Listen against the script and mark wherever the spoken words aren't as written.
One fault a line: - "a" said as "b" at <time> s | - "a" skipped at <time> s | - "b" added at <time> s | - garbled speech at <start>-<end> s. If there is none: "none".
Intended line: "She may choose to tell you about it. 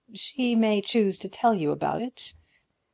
none